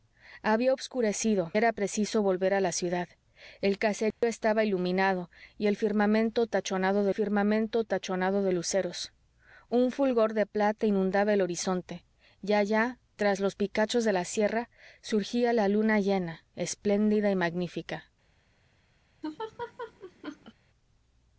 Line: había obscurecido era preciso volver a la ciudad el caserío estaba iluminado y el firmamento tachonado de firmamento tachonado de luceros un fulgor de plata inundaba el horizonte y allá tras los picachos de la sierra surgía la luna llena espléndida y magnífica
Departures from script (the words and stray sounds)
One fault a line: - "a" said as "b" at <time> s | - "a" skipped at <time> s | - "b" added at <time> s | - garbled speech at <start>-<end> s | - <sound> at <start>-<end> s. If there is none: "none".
- dropout at 4.1-4.2 s
- laugh at 19.2-20.5 s